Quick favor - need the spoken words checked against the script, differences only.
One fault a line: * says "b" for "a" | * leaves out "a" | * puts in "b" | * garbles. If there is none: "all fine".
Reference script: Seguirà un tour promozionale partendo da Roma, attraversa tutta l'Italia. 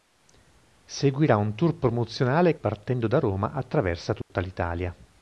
all fine